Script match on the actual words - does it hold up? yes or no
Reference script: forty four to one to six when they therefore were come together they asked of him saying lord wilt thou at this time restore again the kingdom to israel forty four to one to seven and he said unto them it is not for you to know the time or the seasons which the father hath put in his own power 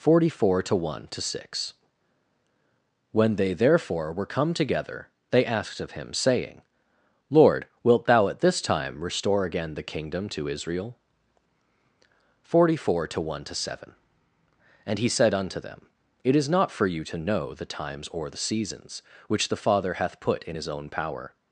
no